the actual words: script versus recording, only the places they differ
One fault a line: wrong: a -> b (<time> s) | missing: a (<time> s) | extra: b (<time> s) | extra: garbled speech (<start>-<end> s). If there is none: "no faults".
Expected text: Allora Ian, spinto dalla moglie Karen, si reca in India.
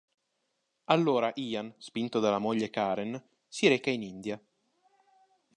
no faults